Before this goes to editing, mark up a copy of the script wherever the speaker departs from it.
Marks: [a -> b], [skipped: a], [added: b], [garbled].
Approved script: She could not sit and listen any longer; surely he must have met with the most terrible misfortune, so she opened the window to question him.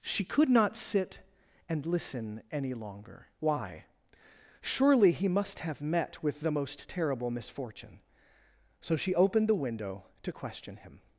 She could not sit and listen any longer; [added: why] surely he must have met with the most terrible misfortune, so she opened the window to question him.